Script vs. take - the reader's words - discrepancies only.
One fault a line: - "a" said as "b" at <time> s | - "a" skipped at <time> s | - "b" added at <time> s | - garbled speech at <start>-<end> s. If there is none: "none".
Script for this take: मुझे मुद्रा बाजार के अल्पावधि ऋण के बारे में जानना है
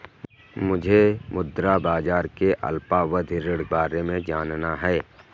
- "के" skipped at 3.6 s